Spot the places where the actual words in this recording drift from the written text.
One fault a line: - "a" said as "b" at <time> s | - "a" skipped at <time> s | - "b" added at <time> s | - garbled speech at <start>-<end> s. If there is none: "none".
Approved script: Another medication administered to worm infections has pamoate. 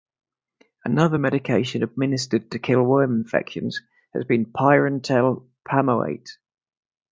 - "kill" added at 2.6 s
- "been pyrantel" added at 4.2 s